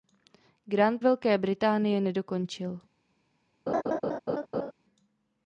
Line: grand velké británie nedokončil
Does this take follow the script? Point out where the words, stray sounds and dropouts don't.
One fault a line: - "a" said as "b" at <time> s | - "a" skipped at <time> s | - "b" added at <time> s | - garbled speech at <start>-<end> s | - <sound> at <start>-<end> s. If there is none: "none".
- laugh at 3.7-4.7 s